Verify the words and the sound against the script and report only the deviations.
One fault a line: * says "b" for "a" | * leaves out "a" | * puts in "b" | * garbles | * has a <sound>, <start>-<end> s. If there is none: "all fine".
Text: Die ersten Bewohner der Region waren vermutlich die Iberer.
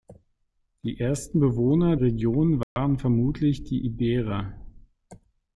* leaves out "der"
* has a dropout, 2.6-2.8 s